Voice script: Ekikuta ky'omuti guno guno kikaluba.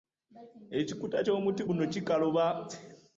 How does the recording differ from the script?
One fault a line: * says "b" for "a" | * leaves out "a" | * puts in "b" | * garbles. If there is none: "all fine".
* leaves out "guno"